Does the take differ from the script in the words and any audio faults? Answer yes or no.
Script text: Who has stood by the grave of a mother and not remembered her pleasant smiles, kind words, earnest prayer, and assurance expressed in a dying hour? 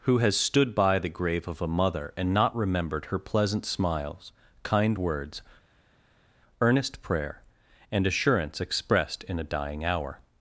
no